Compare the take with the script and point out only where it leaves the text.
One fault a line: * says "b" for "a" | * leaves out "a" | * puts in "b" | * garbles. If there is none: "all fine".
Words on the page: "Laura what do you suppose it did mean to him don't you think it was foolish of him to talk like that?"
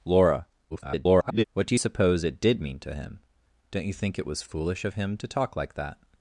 * garbles